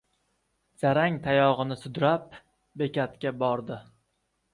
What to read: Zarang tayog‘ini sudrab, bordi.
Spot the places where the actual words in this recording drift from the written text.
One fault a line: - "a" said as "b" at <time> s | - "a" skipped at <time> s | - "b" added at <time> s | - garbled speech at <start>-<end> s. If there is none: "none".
- "bekatga" added at 2.8 s